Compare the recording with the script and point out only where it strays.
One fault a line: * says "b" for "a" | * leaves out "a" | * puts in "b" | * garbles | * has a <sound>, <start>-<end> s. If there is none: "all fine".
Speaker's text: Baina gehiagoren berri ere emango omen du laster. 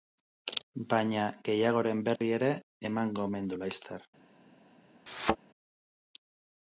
* has a dropout, 2.2-2.2 s
* has a thud, 5.1-5.4 s